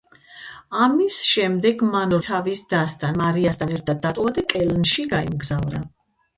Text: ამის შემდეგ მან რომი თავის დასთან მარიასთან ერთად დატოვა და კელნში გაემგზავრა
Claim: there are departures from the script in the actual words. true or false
true